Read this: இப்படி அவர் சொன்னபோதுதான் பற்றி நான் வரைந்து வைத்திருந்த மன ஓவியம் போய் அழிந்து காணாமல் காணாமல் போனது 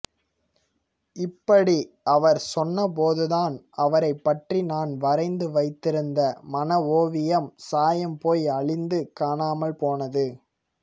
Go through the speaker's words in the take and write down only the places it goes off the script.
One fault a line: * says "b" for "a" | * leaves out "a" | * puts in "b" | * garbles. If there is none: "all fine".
* puts in "அவரைப்"
* puts in "சாயம்"
* leaves out "காணாமல்"